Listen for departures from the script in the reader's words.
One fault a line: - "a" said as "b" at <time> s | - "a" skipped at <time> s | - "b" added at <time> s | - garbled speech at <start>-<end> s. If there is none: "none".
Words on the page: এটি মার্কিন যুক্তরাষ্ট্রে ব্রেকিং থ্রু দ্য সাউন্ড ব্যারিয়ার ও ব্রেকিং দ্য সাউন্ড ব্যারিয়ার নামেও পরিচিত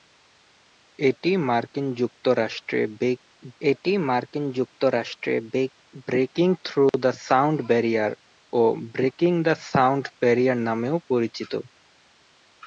- "এটি মার্কিন যুক্তরাষ্ট্রে" added at 3.6 s